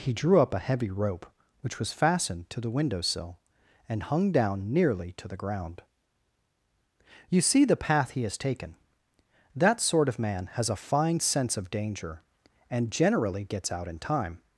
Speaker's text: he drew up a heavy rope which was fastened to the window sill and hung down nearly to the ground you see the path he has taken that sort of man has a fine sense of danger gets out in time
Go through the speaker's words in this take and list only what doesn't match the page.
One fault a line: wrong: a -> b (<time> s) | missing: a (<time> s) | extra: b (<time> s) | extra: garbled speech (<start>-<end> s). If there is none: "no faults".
extra: and generally (12.7 s)